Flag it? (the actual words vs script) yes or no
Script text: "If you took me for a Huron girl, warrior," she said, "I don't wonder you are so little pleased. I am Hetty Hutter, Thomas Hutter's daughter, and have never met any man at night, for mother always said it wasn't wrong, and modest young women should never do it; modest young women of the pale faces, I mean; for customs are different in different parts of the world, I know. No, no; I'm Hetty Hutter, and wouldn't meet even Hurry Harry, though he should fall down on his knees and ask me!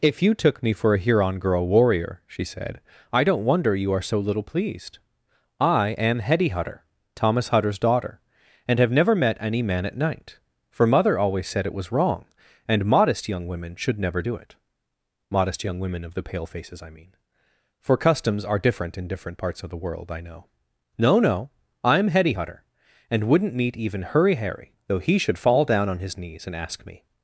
yes